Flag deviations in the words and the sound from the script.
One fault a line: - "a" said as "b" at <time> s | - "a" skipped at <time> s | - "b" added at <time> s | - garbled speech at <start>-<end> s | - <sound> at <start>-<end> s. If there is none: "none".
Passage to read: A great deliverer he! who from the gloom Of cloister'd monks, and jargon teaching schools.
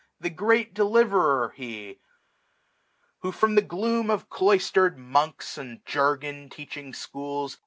- "A" said as "The" at 0.2 s